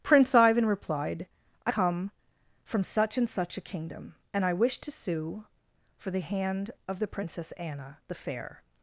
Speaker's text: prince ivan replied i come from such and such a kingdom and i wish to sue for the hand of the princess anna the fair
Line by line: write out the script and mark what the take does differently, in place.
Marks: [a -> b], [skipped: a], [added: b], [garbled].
prince ivan replied i come from such and such a kingdom and i wish to sue for the hand of the princess anna the fair